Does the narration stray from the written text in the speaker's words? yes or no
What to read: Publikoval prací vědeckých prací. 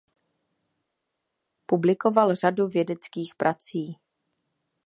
yes